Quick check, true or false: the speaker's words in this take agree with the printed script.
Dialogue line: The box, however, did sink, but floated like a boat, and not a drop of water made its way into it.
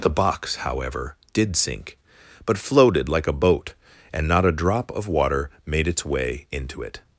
true